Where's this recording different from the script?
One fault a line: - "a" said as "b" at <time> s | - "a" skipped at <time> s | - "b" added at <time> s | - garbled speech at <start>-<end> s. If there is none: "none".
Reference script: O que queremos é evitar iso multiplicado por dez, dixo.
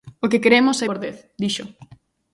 - "evitar iso multiplicado" skipped at 0.8 s